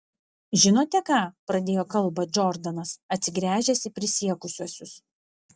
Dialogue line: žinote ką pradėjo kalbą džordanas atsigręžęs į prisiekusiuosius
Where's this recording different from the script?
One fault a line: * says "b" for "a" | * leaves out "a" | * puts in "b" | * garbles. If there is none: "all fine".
all fine